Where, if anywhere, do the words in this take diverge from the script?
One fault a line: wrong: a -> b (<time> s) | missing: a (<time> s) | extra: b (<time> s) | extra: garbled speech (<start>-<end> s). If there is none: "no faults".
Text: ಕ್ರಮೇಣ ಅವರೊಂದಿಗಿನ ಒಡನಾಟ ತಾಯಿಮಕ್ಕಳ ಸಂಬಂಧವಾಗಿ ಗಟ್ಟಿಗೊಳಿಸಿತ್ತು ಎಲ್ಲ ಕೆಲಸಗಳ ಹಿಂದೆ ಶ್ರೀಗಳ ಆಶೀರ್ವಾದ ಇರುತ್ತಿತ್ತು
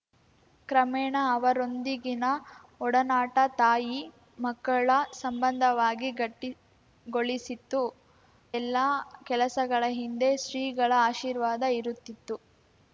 no faults